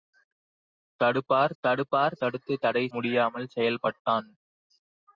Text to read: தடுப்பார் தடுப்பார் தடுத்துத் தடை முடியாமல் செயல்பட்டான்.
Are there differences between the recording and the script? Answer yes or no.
no